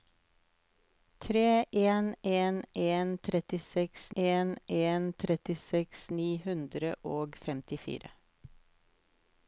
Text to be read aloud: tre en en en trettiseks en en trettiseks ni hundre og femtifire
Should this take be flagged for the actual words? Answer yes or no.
no